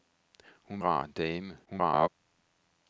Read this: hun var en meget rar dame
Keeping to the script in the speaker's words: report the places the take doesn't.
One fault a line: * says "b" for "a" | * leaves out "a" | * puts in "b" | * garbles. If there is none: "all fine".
* leaves out "var en meget"
* garbles